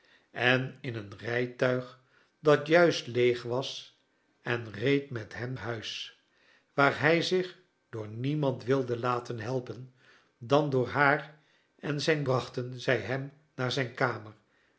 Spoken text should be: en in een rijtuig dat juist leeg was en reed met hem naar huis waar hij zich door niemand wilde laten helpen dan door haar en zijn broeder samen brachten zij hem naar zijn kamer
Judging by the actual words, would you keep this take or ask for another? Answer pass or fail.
fail